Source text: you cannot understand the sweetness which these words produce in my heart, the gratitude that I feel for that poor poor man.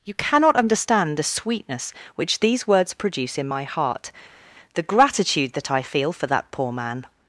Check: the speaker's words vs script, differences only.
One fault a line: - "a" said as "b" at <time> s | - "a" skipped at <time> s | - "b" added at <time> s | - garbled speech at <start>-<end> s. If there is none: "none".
- "poor" skipped at 6.7 s